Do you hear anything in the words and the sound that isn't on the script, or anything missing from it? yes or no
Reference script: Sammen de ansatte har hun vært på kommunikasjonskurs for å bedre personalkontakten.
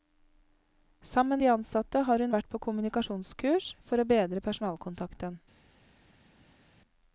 no